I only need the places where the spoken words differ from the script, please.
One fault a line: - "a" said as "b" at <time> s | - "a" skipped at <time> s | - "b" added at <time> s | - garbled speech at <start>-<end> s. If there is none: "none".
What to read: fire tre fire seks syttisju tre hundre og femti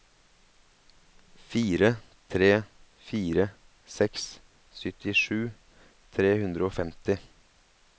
none